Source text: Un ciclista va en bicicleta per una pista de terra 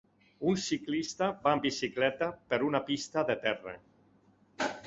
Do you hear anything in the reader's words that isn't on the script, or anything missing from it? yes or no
no